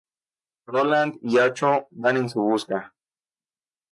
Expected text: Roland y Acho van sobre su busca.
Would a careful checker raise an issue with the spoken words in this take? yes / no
yes